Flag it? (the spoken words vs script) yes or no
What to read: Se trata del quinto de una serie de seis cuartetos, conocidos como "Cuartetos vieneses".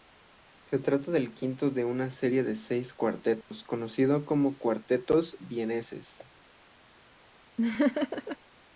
no